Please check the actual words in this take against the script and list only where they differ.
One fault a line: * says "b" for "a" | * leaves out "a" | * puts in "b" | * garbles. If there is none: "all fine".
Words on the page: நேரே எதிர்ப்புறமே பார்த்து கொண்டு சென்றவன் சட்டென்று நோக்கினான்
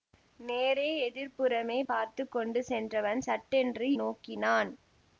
all fine